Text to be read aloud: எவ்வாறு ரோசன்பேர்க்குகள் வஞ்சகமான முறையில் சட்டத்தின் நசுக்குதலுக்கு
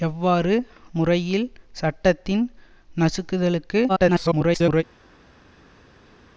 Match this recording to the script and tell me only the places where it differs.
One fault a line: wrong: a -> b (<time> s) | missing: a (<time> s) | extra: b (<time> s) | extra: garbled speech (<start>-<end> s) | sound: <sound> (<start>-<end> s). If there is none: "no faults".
missing: ரோசன்பேர்க்குகள் வஞ்சகமான (0.5 s)
extra: garbled speech (3.9-4.8 s)